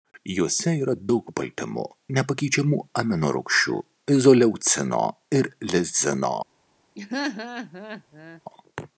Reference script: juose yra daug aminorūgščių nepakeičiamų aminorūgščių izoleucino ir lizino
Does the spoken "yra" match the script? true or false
true